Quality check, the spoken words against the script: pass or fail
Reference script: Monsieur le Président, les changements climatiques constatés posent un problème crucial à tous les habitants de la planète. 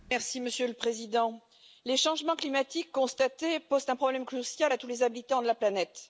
pass